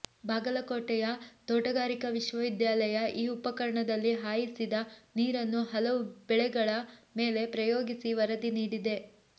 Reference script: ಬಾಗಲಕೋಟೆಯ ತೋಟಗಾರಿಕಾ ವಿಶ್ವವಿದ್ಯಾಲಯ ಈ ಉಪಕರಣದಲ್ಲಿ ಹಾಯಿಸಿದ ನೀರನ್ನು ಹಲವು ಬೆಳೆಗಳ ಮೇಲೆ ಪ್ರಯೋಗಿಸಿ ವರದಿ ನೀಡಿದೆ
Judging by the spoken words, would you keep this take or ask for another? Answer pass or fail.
pass